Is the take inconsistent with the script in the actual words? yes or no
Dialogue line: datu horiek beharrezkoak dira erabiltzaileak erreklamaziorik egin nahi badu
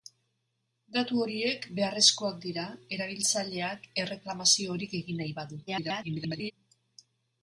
yes